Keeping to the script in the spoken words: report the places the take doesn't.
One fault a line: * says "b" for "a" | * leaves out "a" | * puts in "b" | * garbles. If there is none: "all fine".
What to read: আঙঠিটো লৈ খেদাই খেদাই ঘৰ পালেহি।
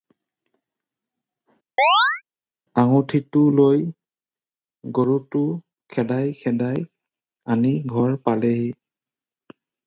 * puts in "গৰুটো"
* puts in "আনি"